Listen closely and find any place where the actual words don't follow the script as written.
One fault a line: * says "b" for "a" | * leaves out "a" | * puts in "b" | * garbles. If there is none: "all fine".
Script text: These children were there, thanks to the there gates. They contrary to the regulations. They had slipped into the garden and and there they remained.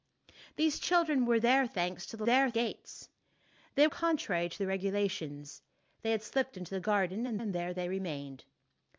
all fine